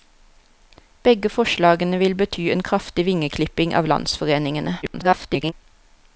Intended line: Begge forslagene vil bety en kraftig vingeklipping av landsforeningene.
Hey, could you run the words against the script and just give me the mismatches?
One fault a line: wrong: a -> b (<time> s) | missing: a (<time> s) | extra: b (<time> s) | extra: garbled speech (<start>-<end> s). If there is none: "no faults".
extra: garbled speech (4.8-5.5 s)